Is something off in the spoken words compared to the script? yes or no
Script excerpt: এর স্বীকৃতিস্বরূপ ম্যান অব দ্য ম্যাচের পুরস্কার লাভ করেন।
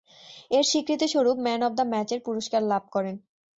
no